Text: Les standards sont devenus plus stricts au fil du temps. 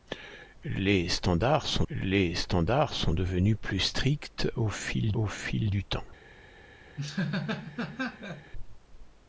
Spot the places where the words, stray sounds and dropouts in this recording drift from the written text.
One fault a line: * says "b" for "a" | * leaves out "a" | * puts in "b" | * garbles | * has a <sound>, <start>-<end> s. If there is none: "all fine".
* puts in "les standards sont"
* puts in "au fil"
* has a laugh, 7.0-8.5 s